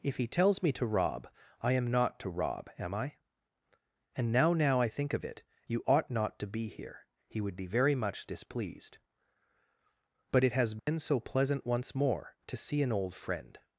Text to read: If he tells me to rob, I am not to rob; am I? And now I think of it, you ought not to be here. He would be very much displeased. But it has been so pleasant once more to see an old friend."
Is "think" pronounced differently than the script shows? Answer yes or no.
no